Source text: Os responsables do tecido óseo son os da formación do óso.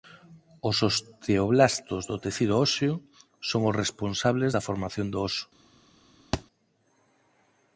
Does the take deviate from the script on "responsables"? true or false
true